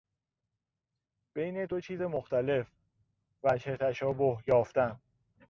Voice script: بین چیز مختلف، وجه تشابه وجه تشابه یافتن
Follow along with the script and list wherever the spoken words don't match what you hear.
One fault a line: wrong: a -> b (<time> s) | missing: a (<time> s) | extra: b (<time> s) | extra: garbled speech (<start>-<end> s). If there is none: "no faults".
extra: دو (1.6 s)
missing: وجه تشابه (4.4 s)